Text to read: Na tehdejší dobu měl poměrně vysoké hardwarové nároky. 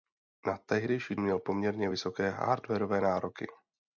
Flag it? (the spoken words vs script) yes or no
yes